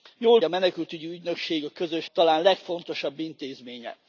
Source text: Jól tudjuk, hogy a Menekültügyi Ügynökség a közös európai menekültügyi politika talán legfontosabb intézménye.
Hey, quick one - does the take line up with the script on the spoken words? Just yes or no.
no